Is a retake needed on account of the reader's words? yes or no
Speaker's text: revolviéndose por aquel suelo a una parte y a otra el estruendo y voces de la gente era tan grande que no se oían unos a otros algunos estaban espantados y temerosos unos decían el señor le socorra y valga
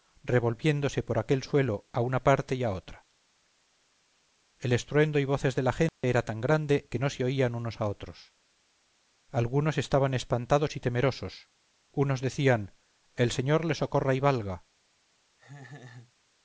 no